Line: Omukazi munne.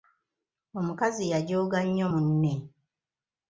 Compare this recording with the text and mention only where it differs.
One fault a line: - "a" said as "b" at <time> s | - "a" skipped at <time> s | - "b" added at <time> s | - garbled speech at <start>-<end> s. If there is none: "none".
- "yajooga nnyo" added at 1.3 s